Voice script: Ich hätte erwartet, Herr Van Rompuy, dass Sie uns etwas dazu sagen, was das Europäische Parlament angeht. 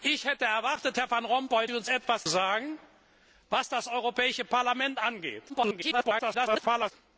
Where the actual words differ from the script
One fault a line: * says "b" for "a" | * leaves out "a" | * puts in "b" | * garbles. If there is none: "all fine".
* leaves out "dass"
* leaves out "dazu"
* garbles